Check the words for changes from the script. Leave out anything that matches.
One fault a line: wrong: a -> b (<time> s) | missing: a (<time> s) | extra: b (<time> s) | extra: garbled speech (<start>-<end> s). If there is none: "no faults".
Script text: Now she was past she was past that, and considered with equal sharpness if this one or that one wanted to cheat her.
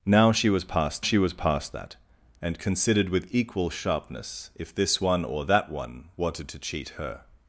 no faults